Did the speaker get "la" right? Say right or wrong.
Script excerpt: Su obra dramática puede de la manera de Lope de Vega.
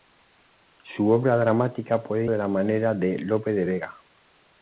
right